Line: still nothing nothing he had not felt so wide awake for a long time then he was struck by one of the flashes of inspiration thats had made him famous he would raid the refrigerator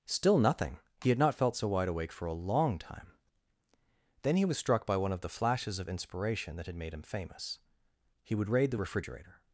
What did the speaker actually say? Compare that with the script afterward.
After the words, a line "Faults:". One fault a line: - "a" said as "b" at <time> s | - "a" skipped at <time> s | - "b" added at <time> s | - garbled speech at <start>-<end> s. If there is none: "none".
still nothing he had not felt so wide awake for a long time then he was struck by one of the flashes of inspiration that had made him famous he would raid the refrigerator
Faults:
- "nothing" skipped at 0.8 s
- "thats" said as "that" at 6.5 s